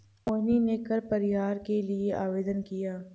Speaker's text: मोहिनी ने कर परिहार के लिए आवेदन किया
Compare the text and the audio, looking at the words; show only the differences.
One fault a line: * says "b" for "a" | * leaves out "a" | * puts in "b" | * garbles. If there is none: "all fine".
all fine